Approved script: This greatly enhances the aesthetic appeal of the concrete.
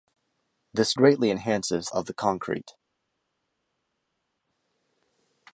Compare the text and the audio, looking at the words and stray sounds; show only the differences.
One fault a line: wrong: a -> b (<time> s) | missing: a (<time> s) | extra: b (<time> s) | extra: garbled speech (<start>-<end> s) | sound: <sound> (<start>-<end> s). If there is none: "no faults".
missing: the aesthetic appeal (1.9 s)